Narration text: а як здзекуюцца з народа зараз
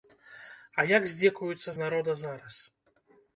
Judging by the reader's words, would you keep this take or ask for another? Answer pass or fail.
pass